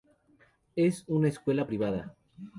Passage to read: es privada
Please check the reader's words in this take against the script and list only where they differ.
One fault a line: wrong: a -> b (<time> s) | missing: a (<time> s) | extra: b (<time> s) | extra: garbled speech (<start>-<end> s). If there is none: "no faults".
extra: una escuela (1.1 s)